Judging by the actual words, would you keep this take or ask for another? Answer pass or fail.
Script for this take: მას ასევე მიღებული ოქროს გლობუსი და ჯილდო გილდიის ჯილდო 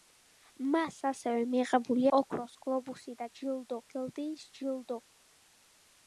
pass